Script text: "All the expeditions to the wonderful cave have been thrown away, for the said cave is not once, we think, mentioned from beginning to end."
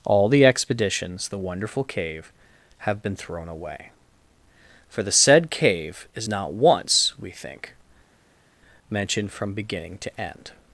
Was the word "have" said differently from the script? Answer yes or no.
no